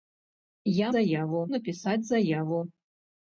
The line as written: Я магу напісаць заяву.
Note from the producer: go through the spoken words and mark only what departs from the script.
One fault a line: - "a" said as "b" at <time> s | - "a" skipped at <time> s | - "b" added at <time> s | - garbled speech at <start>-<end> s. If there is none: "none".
- "магу" said as "заяву" at 0.9 s